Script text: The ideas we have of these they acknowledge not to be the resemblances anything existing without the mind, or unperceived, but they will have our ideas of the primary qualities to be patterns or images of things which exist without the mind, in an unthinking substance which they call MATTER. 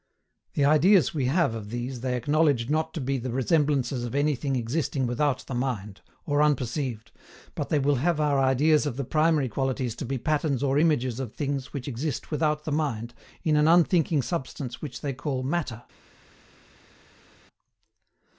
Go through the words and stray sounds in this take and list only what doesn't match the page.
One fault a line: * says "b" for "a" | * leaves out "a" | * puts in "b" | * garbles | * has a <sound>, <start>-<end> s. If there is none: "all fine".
* puts in "of"